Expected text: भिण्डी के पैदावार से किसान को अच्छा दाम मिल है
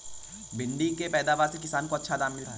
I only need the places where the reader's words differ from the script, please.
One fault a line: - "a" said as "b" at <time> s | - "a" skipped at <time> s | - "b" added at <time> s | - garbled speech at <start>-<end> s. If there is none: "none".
none